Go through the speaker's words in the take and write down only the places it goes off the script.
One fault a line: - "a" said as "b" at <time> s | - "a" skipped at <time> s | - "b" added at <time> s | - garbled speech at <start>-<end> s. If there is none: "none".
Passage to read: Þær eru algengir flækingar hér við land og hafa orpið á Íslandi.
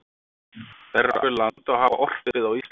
- "algengir flækingar hér" skipped at 1.2 s